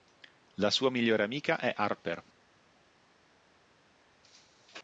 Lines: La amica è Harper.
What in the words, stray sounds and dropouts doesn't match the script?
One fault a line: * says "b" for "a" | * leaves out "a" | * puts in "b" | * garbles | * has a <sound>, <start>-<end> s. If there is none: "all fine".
* puts in "sua migliore"